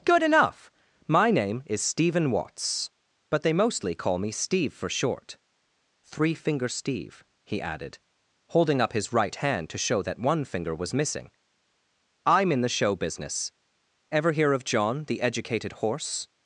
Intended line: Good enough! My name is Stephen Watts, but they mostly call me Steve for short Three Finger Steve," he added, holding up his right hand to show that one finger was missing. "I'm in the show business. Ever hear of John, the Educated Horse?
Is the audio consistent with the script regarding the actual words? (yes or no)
yes